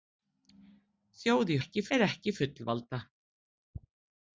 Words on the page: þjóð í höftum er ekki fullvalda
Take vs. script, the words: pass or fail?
fail